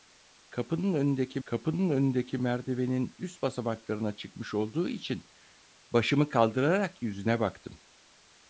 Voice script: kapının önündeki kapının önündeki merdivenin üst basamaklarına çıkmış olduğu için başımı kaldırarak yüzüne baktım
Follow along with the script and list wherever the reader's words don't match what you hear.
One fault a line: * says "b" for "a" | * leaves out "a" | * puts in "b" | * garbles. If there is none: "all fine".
all fine